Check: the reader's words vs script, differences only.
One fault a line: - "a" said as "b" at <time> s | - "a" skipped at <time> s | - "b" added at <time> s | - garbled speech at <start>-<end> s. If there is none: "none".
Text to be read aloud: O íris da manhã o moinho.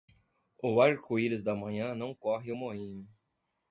- "arco" added at 0.8 s
- "não corre" added at 1.9 s